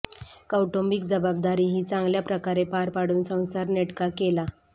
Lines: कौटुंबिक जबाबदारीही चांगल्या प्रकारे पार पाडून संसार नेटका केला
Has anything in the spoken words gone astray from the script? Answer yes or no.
no